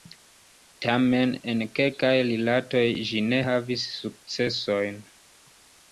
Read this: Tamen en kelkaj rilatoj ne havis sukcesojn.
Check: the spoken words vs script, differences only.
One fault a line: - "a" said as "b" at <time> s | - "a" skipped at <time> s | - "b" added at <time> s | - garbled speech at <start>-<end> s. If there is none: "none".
- "ĝi" added at 3.1 s